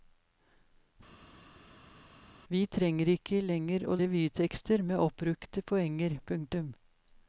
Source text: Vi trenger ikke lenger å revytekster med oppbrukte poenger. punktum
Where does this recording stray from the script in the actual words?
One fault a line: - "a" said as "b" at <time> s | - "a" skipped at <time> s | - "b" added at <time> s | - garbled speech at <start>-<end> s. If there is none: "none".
none